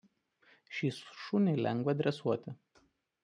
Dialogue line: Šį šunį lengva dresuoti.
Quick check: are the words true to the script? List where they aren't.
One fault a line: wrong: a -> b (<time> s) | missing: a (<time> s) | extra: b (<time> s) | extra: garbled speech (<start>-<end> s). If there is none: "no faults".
no faults